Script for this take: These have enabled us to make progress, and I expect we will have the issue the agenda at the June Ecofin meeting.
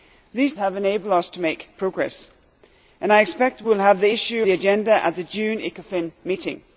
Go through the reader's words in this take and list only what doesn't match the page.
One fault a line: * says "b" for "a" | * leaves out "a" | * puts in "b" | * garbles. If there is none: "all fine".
all fine